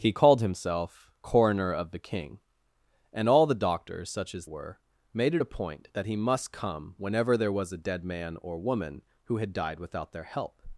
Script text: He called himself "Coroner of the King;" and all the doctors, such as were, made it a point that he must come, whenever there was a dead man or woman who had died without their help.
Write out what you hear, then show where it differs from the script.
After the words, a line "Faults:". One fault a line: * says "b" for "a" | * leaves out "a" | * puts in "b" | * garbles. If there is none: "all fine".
He called himself "Coroner of the King;" and all the doctors, such as were, made it a point that he must come, whenever there was a dead man or woman who had died without their help.
Faults:
all fine